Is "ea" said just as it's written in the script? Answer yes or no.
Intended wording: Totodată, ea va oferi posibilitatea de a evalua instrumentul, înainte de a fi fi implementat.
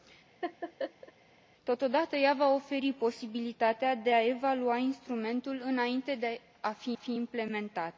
yes